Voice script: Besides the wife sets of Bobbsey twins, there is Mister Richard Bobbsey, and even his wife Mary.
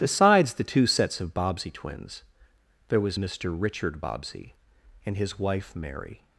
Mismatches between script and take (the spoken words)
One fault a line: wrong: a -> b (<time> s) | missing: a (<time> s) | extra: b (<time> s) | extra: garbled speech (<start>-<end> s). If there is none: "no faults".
wrong: wife -> two (0.6 s)
wrong: is -> was (3.0 s)
missing: even (5.2 s)